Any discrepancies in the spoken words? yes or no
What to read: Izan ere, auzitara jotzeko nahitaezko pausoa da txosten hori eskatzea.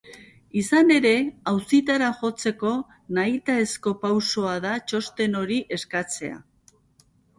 no